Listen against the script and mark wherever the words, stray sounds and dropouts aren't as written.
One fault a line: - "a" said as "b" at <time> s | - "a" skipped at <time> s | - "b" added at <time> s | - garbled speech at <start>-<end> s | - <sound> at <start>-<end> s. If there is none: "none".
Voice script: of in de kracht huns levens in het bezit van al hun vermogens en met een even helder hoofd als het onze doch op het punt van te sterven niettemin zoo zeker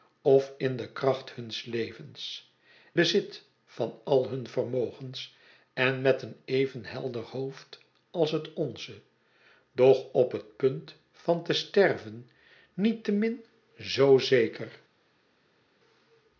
- "in het" skipped at 2.5 s